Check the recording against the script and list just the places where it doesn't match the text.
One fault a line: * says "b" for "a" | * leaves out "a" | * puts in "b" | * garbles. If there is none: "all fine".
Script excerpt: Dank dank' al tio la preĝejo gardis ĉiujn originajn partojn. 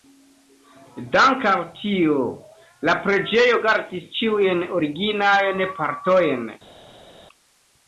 * leaves out "dank"